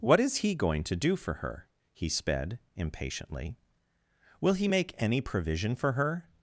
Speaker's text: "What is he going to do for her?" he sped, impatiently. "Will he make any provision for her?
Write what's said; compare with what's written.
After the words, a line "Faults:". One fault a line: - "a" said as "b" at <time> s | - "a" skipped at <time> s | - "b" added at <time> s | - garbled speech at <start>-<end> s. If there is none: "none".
"What is he going to do for her?" he sped, impatiently. "Will he make any provision for her?
Faults:
none